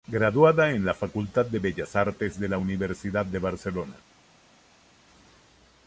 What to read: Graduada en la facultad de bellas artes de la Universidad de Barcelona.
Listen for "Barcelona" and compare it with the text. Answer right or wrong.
right